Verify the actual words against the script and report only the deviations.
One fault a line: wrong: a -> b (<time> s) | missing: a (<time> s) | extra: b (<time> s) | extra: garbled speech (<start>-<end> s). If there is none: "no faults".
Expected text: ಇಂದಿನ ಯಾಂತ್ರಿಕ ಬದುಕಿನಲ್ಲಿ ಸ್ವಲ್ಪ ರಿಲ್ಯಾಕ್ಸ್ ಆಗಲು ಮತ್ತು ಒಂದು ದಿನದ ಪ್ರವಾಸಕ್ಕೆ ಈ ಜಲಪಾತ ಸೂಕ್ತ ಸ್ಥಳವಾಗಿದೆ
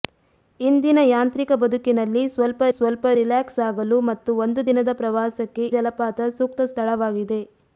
extra: ಸ್ವಲ್ಪ (2.7 s)
missing: ಈ (5.7 s)